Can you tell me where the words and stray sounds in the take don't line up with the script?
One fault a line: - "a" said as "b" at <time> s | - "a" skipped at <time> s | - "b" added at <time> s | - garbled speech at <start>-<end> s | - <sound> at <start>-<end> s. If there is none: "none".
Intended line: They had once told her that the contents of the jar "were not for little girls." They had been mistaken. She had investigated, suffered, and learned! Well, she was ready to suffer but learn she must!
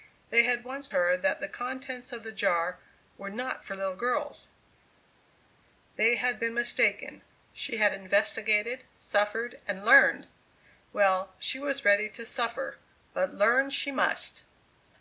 - "told" skipped at 0.9 s